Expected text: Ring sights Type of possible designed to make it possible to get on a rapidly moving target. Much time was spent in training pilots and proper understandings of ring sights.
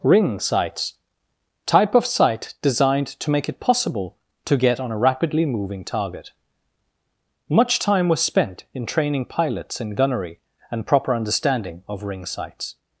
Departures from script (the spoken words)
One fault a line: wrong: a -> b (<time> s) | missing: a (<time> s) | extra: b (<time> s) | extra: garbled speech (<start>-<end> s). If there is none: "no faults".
wrong: possible -> sight (2.0 s)
extra: in gunnery (9.8 s)
wrong: understandings -> understanding (11.1 s)